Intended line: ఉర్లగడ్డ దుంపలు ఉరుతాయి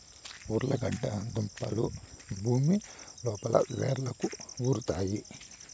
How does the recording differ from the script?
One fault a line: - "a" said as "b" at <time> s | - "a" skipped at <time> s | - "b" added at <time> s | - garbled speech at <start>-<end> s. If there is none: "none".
- "భూమి లోపల వ్రేళ్లకు" added at 2.4 s